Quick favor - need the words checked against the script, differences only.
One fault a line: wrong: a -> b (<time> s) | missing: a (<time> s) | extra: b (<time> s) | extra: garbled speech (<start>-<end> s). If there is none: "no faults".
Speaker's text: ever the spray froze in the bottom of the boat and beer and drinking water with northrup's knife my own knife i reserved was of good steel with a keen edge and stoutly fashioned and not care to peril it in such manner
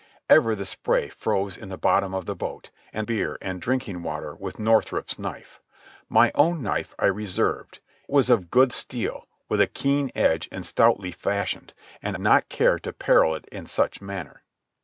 no faults